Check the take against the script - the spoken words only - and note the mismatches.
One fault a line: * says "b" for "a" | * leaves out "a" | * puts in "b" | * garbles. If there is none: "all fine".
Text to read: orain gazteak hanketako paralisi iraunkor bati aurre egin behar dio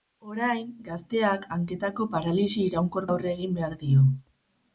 * leaves out "bati"